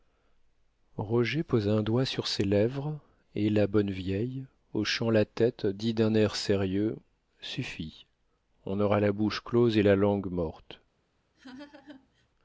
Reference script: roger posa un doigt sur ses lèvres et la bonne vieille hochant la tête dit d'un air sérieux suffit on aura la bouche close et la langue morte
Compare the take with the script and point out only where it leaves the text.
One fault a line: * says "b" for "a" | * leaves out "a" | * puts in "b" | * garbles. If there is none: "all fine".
all fine